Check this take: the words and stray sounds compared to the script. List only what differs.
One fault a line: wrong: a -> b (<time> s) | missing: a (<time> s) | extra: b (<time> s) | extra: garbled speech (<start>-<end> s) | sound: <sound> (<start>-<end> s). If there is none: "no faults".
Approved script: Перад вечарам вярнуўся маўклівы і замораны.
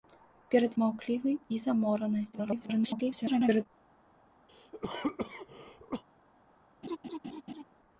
missing: вечарам вярнуўся (0.8 s)
extra: garbled speech (2.3-3.7 s)
sound: cough (4.5-6.0 s)
sound: laugh (6.8-7.6 s)